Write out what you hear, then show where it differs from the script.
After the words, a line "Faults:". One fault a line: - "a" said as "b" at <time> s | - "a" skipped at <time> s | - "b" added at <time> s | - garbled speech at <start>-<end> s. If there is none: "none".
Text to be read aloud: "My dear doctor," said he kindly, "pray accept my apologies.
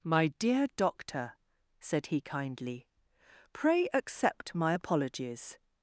"My dear doctor," said he kindly, "pray accept my apologies.
Faults:
none